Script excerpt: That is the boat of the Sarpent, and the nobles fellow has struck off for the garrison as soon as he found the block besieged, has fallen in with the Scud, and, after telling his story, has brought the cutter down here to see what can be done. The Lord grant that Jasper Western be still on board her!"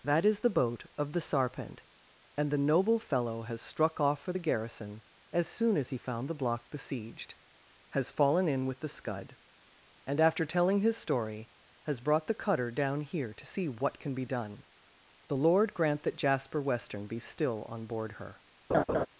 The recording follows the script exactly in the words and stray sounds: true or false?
false